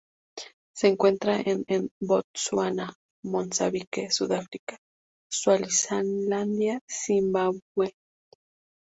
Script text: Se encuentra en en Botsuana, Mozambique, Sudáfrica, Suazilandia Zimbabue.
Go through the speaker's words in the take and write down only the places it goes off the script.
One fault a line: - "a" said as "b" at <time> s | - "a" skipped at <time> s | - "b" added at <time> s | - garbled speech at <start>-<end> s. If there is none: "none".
none